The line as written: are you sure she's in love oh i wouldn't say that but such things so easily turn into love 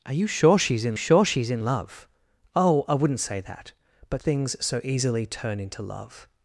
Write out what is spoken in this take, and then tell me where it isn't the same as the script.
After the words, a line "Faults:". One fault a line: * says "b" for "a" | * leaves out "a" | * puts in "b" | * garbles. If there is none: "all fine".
are you sure she's in sure she's in love oh i wouldn't say that but things so easily turn into love
Faults:
* puts in "sure she's in"
* leaves out "such"